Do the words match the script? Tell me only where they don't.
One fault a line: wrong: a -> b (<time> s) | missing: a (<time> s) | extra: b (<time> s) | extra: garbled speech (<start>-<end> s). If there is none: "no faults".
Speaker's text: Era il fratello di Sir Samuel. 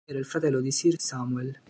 no faults